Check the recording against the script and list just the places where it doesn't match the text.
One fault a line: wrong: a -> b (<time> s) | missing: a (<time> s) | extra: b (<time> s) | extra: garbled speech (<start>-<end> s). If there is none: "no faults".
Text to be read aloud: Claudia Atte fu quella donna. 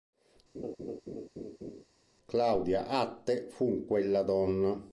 no faults